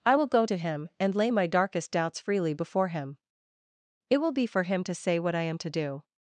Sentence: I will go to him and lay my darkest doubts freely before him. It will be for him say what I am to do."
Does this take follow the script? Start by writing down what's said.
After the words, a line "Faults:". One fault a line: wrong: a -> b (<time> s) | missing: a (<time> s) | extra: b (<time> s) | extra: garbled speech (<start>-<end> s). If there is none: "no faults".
I will go to him and lay my darkest doubts freely before him. It will be for him to say what I am to do."
Faults:
extra: to (4.8 s)